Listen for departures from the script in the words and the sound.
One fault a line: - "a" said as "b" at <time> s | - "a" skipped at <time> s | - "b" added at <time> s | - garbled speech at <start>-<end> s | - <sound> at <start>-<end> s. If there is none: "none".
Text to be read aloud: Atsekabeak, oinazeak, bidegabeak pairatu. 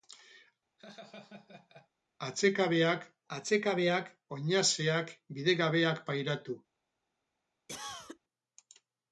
- laugh at 0.8-1.9 s
- "atsekabeak" added at 3.4 s
- cough at 7.7-8.2 s